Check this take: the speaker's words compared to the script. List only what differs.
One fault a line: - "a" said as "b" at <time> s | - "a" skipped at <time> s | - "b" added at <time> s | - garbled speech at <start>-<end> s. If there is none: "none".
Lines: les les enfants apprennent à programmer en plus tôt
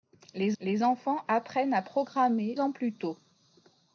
none